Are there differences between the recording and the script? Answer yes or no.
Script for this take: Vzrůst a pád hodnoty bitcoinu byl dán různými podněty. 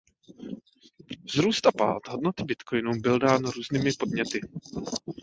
no